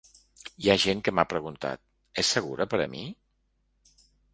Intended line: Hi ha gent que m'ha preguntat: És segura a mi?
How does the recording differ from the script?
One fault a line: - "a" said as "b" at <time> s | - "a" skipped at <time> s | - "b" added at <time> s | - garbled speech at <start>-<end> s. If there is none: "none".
- "per" added at 2.8 s